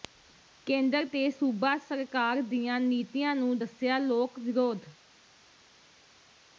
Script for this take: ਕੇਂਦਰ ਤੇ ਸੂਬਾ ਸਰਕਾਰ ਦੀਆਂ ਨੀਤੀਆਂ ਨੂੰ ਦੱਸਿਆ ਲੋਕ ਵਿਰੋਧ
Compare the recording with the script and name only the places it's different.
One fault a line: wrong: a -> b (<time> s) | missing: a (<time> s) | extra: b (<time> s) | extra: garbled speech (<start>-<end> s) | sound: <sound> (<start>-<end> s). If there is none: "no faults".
no faults